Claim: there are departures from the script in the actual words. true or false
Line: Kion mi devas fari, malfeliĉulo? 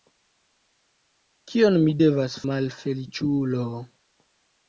true